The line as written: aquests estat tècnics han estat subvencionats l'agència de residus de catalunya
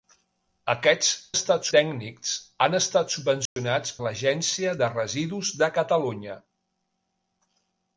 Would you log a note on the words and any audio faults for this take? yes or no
yes